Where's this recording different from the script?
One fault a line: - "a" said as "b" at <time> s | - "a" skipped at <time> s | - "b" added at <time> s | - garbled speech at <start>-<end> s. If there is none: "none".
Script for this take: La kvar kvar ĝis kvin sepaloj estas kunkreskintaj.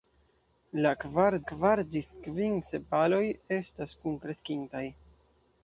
none